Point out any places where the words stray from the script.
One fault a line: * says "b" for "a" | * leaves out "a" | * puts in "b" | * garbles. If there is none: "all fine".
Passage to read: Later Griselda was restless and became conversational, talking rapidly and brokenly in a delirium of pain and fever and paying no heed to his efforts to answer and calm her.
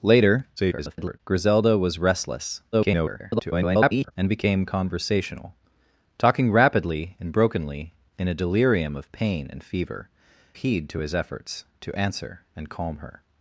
* garbles
* garbles
* leaves out "and paying no"